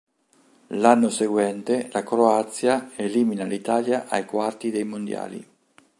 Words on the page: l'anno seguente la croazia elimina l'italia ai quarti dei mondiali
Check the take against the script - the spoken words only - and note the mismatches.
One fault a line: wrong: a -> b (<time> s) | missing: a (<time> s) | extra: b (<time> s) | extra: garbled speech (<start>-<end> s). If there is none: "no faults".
no faults